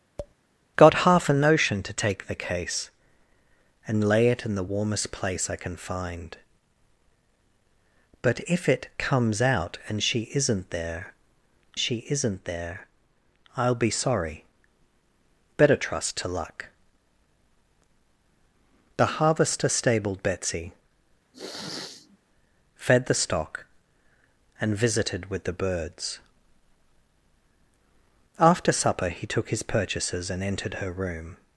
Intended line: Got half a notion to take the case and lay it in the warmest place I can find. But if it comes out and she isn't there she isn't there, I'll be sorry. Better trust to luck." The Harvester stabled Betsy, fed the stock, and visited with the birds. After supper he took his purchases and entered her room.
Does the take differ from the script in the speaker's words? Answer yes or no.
no